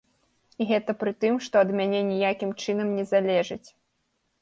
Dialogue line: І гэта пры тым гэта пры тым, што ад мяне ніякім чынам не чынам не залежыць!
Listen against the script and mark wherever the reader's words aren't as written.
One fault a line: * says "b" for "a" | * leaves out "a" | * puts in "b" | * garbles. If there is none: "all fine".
* leaves out "гэта пры тым"
* leaves out "чынам не"